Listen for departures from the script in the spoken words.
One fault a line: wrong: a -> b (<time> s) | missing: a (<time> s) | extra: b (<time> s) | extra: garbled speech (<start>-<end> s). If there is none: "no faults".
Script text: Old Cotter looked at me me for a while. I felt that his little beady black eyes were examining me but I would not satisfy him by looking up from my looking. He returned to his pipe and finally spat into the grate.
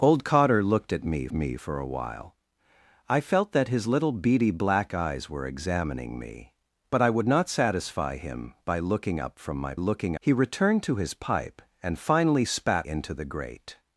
no faults